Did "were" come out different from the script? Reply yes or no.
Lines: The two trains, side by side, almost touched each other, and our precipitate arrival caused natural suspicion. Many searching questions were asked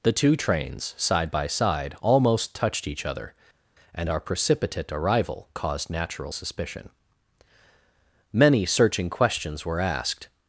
no